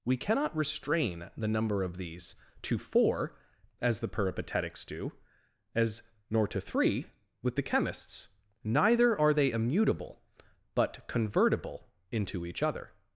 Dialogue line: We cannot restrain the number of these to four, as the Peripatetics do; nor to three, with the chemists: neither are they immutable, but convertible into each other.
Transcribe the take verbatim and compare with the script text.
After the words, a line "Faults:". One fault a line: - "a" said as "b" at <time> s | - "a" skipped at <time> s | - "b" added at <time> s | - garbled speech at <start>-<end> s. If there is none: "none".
We cannot restrain the number of these to four, as the Peripatetics do; as nor to three, with the chemists: neither are they immutable, but convertible into each other.
Faults:
- "as" added at 5.8 s